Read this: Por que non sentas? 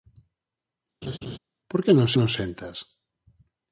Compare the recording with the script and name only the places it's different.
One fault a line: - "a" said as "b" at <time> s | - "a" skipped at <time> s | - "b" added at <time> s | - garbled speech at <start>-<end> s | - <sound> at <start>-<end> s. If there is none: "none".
- laugh at 1.0-1.4 s
- "non" added at 2.2 s